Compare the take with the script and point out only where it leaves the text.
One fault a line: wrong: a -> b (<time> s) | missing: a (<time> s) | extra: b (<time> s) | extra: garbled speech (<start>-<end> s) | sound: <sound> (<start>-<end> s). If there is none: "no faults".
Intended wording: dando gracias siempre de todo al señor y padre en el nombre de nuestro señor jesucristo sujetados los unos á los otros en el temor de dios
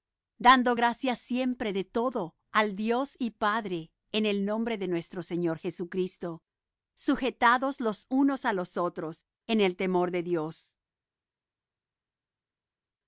wrong: señor -> dios (2.8 s)